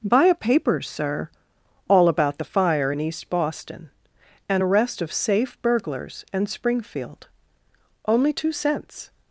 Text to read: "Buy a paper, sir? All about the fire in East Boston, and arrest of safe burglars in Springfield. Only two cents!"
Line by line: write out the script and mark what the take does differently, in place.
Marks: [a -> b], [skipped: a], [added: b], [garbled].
"Buy a paper, sir? All about the fire in East Boston, and arrest of safe burglars [in -> and] Springfield. Only two cents!"